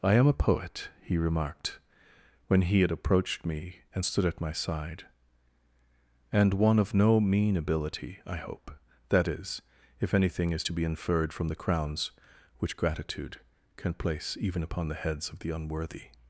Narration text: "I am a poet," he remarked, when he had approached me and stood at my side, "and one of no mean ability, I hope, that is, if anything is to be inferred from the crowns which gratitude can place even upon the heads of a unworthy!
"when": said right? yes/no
yes